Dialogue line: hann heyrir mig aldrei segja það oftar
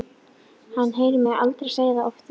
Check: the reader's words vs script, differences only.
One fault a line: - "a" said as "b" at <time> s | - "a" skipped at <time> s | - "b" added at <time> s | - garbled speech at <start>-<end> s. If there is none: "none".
none